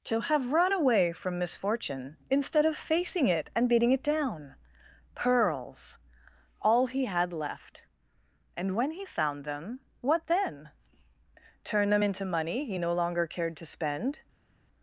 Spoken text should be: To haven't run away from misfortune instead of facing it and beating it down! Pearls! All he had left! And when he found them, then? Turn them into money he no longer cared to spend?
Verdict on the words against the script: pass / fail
fail